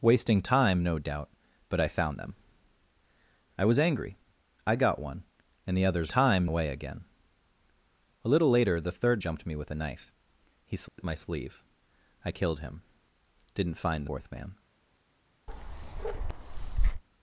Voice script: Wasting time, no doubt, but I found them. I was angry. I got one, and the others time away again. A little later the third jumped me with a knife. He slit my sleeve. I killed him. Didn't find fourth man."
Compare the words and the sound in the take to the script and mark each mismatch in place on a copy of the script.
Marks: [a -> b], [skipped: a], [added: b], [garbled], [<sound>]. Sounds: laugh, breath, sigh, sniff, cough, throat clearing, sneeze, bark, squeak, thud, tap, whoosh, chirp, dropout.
Wasting time, no doubt, but I found them. I was angry. I got one, and the others time away again. A little later the third jumped me with a knife. He slit [dropout] my sleeve. I killed him. Didn't find fourth man." [bark]